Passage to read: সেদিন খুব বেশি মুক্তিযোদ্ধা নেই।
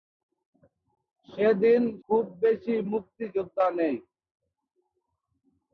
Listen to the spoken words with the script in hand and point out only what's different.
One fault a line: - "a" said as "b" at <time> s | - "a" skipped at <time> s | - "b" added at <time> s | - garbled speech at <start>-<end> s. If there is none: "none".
none